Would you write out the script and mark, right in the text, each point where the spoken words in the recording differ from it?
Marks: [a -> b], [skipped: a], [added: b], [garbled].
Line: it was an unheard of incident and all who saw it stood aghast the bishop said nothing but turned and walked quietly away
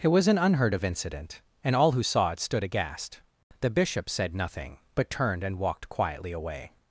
it was an unheard of incident and all who saw it stood aghast the bishop said nothing but turned and walked quietly away